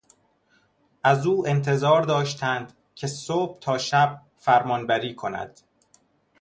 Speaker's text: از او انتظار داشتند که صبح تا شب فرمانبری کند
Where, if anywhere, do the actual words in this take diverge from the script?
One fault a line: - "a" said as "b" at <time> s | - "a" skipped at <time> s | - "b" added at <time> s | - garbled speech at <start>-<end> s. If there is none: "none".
none